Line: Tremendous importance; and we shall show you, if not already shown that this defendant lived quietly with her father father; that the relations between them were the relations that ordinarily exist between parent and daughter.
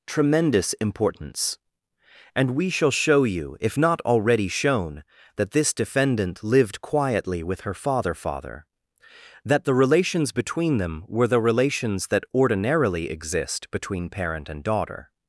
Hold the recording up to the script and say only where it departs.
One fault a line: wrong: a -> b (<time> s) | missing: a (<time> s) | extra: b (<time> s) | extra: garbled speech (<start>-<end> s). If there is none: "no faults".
no faults